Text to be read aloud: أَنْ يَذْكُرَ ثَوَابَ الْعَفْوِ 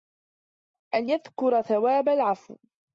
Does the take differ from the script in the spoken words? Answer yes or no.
no